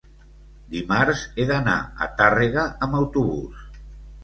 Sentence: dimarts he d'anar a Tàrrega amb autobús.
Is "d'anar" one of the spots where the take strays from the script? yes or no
no